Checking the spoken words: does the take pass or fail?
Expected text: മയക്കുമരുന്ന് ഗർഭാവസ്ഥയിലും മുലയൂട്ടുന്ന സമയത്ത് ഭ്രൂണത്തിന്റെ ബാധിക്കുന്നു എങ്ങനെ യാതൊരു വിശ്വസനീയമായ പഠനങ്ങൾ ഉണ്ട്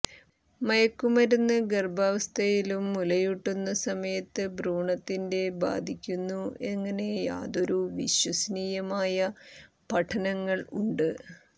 pass